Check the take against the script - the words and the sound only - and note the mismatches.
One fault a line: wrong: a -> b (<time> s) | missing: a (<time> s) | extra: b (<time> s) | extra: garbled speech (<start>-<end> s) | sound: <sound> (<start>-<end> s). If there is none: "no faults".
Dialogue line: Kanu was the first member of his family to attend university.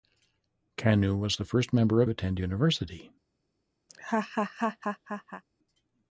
missing: his family to (2.1 s)
sound: laugh (3.9-5.4 s)